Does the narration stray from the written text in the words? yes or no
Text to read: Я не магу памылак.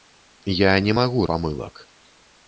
no